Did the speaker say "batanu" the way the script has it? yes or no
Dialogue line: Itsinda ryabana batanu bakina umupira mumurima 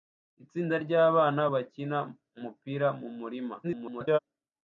no